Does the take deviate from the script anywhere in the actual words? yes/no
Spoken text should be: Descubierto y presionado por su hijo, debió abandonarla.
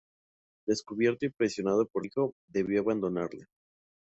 yes